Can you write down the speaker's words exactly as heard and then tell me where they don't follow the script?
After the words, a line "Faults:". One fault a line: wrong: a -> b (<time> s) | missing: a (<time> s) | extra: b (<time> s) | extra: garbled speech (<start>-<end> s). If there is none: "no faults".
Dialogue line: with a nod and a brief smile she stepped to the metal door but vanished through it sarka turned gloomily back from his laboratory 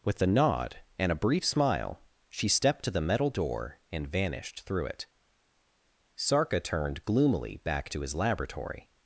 with a nod and a brief smile she stepped to the metal door and vanished through it sarka turned gloomily back to his laboratory
Faults:
wrong: but -> and (3.9 s)
wrong: from -> to (7.9 s)